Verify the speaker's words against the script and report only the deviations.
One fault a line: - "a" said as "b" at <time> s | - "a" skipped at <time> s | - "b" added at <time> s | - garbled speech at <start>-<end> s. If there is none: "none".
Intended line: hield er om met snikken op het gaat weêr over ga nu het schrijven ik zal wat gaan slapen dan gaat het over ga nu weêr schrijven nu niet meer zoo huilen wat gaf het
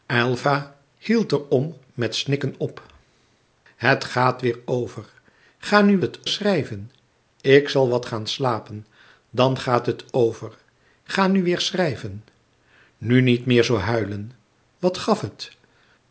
none